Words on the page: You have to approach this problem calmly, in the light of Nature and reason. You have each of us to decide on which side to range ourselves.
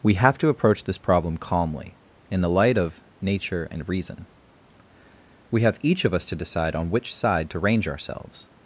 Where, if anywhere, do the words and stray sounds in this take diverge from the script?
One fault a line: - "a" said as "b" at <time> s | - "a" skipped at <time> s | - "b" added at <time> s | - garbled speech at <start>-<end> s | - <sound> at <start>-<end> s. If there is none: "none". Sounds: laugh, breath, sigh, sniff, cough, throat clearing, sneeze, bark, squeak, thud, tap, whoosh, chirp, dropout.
- "You" said as "We" at 0.0 s
- "You" said as "We" at 5.5 s